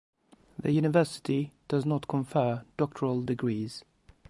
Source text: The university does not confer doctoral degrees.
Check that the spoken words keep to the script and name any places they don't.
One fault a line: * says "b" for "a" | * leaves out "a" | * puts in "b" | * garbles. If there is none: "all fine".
all fine